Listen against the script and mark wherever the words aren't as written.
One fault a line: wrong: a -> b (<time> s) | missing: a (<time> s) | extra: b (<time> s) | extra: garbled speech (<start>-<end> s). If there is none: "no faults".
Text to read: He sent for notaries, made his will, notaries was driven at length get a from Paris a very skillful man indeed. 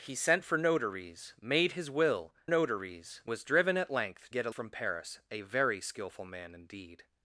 no faults